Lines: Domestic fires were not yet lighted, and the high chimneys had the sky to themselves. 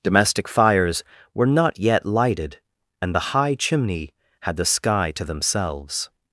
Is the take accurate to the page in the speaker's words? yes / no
no